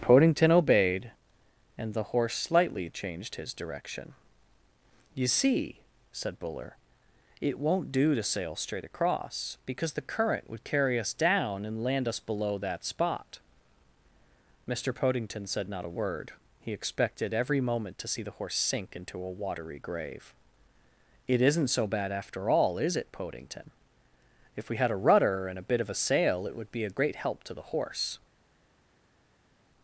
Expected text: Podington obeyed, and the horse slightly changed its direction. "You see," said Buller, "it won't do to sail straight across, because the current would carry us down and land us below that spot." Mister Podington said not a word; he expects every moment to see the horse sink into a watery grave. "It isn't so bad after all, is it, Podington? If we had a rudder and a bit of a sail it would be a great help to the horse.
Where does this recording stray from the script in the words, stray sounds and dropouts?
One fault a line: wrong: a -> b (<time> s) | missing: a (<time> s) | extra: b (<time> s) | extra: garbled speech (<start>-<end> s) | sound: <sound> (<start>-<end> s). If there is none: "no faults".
wrong: its -> his (3.4 s)
wrong: expects -> expected (16.7 s)